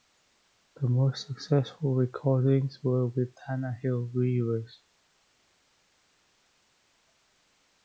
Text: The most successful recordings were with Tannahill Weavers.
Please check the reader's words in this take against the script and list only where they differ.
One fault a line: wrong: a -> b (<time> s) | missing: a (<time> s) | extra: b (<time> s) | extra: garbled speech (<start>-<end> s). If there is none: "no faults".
no faults